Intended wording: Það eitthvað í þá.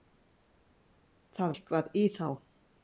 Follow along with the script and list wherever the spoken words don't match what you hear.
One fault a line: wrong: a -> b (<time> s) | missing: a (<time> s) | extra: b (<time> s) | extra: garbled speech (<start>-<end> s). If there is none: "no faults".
no faults